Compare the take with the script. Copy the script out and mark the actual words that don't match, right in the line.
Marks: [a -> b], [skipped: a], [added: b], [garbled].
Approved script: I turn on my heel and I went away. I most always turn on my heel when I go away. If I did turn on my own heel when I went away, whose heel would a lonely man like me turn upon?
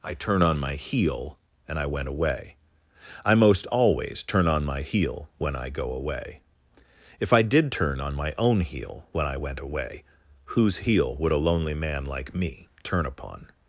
I turn on my heel and I went away. I most always turn on my heel when I go away. If I did turn on my own heel when I went away, whose heel would a lonely man like me turn upon?